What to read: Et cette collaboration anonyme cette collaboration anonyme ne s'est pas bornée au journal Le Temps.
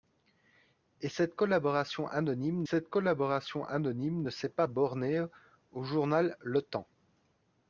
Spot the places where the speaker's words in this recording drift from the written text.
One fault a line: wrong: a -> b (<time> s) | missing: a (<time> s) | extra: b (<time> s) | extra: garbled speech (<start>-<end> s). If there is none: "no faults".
no faults